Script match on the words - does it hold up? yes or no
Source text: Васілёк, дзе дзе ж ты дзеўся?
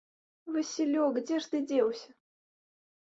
no